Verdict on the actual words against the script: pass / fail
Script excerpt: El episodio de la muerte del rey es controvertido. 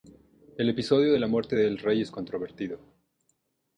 pass